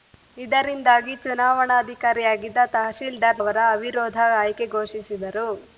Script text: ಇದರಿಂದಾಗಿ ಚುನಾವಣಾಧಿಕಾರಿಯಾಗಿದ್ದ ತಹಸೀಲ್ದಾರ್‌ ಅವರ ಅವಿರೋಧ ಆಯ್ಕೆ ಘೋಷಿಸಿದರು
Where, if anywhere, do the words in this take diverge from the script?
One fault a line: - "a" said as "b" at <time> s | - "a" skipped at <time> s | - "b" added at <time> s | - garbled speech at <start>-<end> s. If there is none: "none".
none